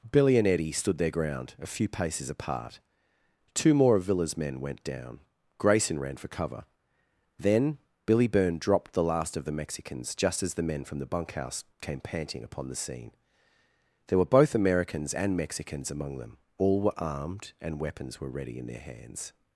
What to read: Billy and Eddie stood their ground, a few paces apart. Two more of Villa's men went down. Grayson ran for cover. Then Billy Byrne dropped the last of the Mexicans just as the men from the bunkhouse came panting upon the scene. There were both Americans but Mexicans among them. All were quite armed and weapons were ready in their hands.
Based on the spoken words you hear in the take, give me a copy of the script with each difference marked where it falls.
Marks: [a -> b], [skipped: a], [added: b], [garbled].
Billy and Eddie stood their ground, a few paces apart. Two more of Villa's men went down. Grayson ran for cover. Then Billy Byrne dropped the last of the Mexicans just as the men from the bunkhouse came panting upon the scene. There were both Americans [but -> and] Mexicans among them. All were [skipped: quite] armed and weapons were ready in their hands.